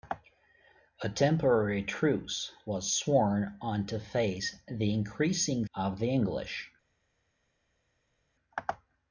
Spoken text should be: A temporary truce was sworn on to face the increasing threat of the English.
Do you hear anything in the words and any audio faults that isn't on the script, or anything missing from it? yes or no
yes